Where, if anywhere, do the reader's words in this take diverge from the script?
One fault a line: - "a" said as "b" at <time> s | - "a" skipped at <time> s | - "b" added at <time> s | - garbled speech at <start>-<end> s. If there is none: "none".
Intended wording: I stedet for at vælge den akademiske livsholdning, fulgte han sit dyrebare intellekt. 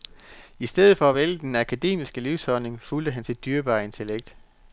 none